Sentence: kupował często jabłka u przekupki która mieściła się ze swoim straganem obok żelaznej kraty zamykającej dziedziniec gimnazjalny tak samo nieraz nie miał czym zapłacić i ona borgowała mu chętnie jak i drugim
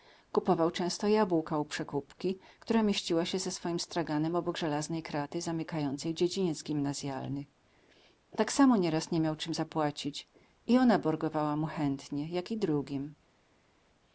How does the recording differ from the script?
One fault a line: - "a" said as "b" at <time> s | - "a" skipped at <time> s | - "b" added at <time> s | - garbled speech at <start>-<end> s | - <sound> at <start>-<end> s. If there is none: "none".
none